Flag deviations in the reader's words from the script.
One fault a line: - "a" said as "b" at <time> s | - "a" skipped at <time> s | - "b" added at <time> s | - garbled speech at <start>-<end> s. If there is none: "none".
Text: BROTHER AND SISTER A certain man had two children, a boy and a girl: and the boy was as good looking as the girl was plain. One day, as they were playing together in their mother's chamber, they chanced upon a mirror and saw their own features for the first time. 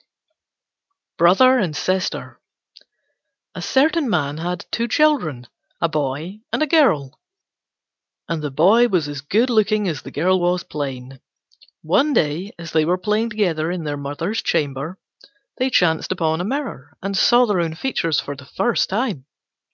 none